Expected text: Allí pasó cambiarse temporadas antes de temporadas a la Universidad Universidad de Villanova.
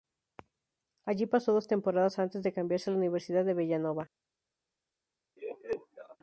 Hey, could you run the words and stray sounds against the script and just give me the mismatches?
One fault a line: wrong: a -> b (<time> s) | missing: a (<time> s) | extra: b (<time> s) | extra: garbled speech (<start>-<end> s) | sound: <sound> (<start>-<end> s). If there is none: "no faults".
wrong: cambiarse -> dos (1.5 s)
wrong: temporadas -> cambiarse (2.5 s)
missing: Universidad (3.4 s)
sound: laugh (5.4-6.2 s)